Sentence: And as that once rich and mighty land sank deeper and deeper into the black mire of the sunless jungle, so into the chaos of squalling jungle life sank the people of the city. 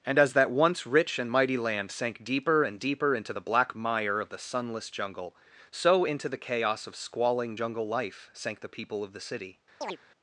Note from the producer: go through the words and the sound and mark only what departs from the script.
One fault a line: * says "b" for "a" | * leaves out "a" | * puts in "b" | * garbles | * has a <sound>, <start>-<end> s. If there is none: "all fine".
* has a chirp, 9.8-10.0 s